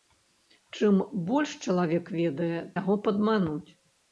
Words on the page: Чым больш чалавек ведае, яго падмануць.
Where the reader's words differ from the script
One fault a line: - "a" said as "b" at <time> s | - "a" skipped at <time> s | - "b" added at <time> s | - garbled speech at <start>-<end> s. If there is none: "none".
none